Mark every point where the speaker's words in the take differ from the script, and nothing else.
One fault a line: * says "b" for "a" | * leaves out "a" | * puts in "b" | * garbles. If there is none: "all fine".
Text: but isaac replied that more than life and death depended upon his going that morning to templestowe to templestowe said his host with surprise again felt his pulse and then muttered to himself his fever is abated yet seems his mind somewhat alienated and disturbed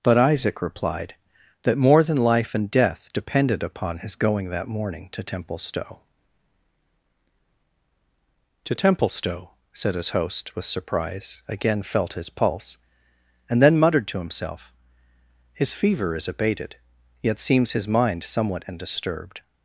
* leaves out "alienated"